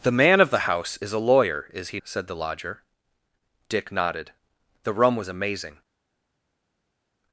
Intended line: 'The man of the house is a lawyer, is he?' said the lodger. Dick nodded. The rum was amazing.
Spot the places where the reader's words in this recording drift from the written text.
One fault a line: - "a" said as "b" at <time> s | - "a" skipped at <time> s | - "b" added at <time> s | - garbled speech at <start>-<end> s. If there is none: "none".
none